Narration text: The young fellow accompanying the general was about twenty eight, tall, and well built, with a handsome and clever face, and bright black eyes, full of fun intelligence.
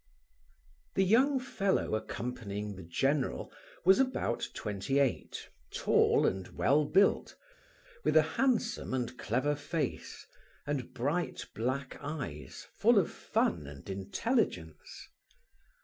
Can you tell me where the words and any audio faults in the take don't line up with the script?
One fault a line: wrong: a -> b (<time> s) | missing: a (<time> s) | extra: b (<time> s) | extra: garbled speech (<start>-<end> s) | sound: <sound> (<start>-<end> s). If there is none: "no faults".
extra: and (13.7 s)